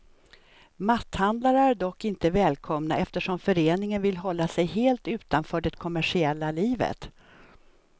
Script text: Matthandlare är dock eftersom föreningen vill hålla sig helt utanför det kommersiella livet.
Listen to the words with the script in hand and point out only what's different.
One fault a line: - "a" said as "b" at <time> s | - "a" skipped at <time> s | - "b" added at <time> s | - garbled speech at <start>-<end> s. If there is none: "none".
- "inte välkomna" added at 2.0 s